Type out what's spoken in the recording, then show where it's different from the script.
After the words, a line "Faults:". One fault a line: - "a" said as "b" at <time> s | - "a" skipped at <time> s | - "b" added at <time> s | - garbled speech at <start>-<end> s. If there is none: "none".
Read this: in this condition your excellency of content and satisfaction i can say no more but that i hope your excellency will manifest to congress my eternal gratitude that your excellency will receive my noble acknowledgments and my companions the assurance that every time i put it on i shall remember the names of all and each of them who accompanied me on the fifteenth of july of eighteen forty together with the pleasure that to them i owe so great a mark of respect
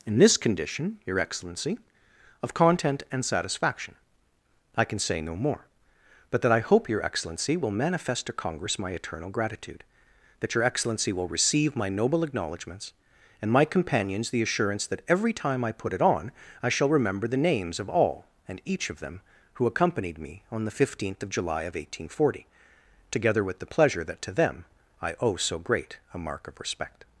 in this condition your excellency of content and satisfaction i can say no more but that i hope your excellency will manifest to congress my eternal gratitude that your excellency will receive my noble acknowledgments and my companions the assurance that every time i put it on i shall remember the names of all and each of them who accompanied me on the fifteenth of july of eighteen forty together with the pleasure that to them i owe so great a mark of respect
Faults:
none